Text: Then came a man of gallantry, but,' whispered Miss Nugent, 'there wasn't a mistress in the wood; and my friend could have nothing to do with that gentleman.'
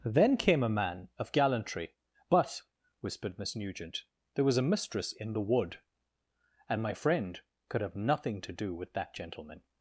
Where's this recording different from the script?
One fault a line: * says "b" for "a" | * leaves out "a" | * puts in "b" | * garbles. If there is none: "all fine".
* says "was" for "wasn't"